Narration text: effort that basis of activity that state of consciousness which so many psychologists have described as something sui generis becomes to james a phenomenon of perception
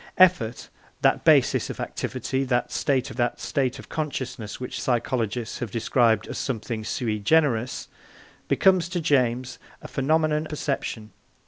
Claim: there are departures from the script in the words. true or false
true